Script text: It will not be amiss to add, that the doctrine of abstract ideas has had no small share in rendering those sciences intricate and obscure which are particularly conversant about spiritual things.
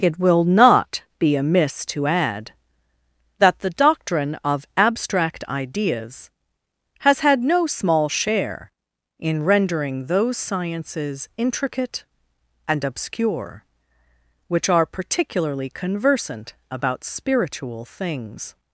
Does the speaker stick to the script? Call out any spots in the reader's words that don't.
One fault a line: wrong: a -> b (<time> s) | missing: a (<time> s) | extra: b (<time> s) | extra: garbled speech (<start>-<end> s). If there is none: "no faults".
no faults